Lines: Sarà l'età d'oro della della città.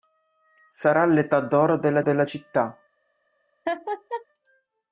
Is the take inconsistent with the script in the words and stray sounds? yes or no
yes